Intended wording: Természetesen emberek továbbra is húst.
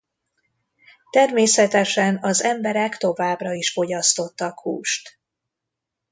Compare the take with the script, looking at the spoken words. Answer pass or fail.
fail